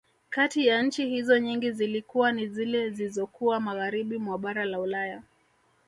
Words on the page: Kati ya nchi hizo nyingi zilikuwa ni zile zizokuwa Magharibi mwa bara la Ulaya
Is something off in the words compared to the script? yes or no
no